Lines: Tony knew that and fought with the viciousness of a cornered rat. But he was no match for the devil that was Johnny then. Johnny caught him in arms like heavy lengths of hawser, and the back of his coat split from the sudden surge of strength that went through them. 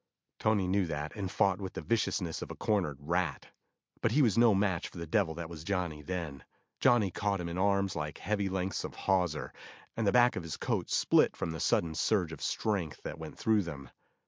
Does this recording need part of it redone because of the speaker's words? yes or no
no